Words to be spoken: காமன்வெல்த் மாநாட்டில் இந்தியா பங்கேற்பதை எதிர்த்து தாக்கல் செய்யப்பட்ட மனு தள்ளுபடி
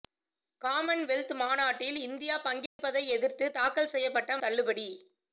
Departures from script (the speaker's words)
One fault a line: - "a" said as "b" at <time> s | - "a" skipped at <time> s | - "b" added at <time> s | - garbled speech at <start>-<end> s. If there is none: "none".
- "மனு" skipped at 4.4 s